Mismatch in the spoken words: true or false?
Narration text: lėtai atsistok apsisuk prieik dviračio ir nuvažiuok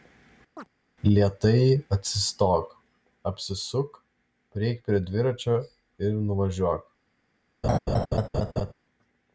true